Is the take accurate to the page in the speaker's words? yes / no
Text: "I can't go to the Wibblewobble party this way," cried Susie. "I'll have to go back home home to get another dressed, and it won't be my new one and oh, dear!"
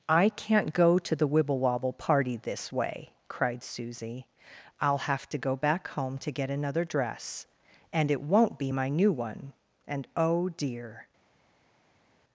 no